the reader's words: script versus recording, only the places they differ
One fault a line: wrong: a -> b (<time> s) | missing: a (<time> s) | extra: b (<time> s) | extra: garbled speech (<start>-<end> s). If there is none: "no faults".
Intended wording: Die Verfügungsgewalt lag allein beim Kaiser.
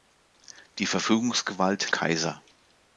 missing: lag allein beim (1.9 s)